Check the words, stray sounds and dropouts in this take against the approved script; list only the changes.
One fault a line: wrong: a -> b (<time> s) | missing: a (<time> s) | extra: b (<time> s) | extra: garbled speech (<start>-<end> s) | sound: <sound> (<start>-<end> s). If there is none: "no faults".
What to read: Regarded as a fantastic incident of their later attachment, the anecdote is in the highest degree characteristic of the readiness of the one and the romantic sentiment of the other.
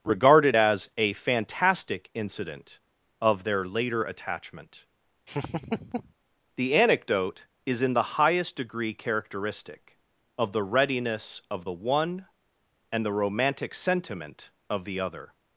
sound: laugh (5.3-6.1 s)